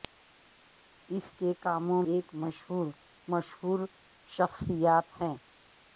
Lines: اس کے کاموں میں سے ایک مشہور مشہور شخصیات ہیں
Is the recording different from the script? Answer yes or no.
yes